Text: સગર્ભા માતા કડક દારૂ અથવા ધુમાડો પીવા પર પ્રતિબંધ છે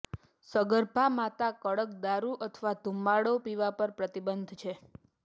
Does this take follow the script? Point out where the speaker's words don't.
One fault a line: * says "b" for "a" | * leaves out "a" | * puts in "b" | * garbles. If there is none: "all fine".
all fine